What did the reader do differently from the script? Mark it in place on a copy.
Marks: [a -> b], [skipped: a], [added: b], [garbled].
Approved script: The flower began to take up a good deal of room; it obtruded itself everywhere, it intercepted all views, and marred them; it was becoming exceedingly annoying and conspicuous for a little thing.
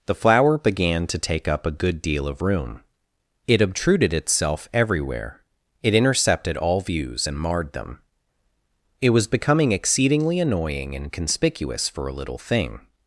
The flower began to take up a good deal of room; it obtruded itself everywhere, it intercepted all views, and marred them; it was becoming exceedingly annoying and conspicuous for a little thing.